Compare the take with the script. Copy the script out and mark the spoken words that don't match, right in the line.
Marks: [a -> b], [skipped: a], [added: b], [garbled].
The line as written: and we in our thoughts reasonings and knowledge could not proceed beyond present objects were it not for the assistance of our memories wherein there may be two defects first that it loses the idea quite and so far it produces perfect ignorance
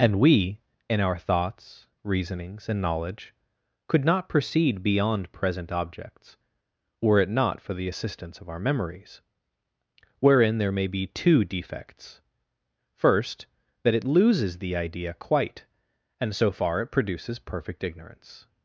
and we in our thoughts reasonings and knowledge could not proceed beyond present objects were it not for the assistance of our memories wherein there may be two defects first that it loses the idea quite and so far it produces perfect ignorance